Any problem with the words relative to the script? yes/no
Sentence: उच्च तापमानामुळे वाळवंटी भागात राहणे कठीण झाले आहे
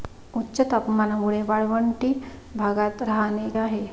yes